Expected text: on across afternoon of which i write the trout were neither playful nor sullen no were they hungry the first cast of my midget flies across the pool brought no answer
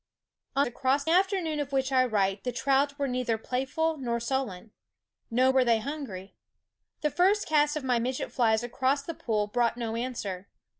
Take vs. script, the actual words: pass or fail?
pass